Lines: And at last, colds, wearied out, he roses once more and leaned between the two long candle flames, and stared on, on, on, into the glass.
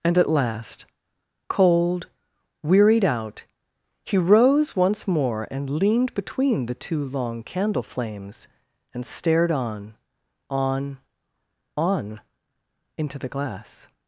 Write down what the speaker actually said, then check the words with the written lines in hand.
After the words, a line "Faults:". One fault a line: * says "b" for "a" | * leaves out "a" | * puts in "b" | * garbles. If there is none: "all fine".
And at last, cold, wearied out, he rose once more and leaned between the two long candle flames, and stared on, on, on, into the glass.
Faults:
* says "cold" for "colds"
* says "rose" for "roses"